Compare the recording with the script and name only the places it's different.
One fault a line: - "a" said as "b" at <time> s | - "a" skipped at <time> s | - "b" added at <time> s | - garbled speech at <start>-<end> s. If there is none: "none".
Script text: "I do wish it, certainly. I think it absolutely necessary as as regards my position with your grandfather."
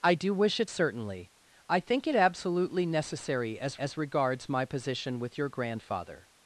none